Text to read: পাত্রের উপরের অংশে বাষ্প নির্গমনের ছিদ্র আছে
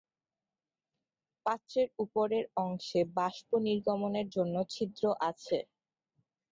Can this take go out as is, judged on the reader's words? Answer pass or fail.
fail